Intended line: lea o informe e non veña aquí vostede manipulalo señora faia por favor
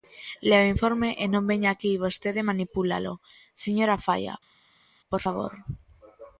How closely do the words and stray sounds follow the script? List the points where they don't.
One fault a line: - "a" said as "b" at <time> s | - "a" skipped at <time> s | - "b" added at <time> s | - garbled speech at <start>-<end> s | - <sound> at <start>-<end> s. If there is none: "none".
none